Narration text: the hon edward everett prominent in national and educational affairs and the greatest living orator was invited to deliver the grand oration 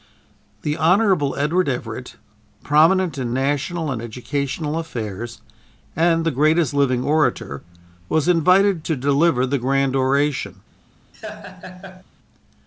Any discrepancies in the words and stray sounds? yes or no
yes